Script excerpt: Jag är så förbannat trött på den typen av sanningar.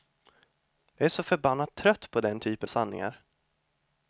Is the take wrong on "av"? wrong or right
wrong